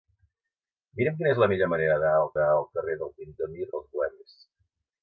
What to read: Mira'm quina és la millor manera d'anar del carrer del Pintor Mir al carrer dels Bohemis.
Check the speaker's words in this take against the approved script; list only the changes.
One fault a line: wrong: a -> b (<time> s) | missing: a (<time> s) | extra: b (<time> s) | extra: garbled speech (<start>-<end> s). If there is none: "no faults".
extra: d'anar del (2.4 s)
missing: al carrer (3.7 s)